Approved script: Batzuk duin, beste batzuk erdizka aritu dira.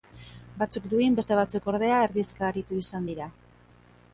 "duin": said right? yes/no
yes